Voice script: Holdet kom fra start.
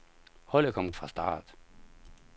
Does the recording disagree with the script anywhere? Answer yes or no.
no